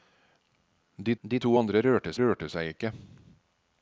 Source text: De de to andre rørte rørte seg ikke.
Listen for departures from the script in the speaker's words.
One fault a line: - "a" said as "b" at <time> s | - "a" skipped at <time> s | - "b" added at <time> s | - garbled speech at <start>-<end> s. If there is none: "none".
none